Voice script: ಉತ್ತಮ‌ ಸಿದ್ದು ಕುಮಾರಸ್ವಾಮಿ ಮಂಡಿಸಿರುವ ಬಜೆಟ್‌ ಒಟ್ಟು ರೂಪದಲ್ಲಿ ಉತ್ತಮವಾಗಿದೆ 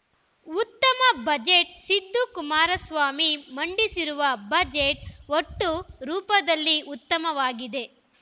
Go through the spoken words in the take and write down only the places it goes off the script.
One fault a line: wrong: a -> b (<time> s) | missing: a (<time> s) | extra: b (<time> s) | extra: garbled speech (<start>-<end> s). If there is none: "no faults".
extra: ಬಜೆಟ್ (1.2 s)